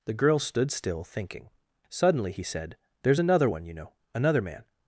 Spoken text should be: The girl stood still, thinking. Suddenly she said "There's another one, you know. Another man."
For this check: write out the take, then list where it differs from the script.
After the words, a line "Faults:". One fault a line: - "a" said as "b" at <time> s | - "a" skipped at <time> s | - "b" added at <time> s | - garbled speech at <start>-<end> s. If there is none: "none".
The girl stood still, thinking. Suddenly he said "There's another one, you know. Another man."
Faults:
- "she" said as "he" at 2.3 s